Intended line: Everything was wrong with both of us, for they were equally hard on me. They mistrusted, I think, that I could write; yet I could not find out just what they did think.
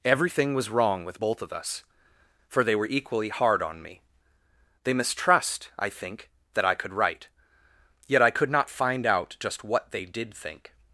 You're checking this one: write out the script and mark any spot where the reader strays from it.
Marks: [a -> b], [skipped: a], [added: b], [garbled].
Everything was wrong with both of us, for they were equally hard on me. They [mistrusted, -> mistrust] I think, that I could write; yet I could not find out just what they did think.